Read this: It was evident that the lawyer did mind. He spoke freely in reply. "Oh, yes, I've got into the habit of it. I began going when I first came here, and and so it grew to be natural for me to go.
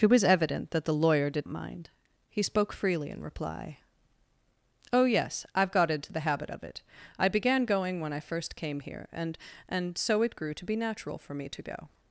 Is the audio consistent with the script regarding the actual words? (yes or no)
yes